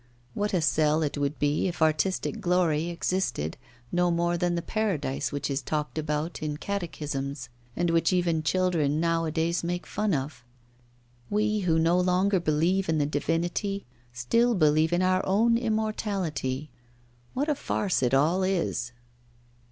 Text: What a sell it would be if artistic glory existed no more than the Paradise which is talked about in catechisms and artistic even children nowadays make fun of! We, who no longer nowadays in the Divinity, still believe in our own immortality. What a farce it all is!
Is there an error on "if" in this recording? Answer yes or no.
no